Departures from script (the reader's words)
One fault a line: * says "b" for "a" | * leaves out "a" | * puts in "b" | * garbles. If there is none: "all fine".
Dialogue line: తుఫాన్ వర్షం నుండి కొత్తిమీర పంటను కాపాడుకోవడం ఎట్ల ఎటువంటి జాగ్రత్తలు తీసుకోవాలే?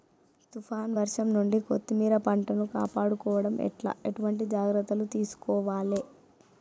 all fine